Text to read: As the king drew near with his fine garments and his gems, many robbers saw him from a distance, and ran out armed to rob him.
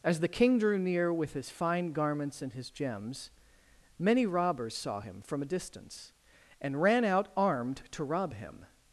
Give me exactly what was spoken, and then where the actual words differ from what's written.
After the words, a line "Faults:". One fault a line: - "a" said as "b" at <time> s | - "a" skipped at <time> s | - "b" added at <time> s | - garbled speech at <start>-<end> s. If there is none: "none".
As the king drew near with his fine garments and his gems, many robbers saw him from a distance, and ran out armed to rob him.
Faults:
none